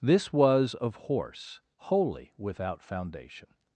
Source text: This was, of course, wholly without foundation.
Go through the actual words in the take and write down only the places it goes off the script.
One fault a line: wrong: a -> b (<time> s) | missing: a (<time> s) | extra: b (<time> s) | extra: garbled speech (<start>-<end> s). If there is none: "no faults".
wrong: course -> horse (0.9 s)